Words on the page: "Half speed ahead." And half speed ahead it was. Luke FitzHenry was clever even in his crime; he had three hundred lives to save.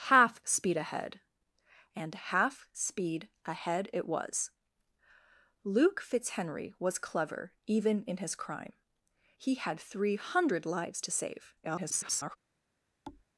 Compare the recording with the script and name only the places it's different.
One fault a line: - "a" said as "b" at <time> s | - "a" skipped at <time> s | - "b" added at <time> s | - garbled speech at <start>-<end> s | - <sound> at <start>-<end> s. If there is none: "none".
- garbled speech at 11.6-12.4 s
- thud at 13.1-13.3 s